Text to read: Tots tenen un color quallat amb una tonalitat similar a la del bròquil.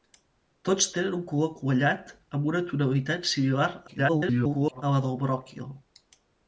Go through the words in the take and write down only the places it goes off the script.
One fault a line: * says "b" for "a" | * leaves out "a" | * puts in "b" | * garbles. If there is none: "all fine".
* garbles